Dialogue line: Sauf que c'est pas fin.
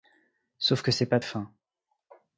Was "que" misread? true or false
false